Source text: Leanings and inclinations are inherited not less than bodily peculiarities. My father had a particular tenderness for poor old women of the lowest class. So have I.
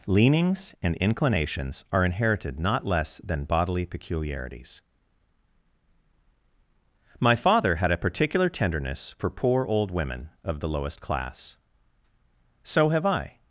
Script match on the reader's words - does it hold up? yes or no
yes